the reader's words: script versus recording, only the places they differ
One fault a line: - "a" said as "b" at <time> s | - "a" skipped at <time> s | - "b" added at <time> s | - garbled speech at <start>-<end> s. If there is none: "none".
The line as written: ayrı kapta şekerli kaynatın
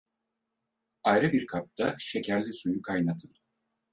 - "bir" added at 1.3 s
- "suyu" added at 2.5 s